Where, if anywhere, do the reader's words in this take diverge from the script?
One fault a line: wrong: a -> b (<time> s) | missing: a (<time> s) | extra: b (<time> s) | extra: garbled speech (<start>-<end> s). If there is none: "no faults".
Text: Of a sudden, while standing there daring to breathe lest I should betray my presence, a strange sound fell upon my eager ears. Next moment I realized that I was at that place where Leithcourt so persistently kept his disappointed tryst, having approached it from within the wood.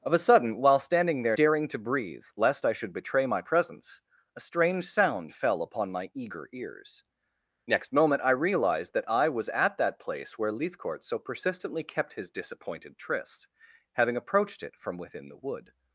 no faults